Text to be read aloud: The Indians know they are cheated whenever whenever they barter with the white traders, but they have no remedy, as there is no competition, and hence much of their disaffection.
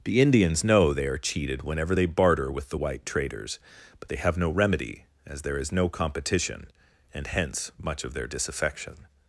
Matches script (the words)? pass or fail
fail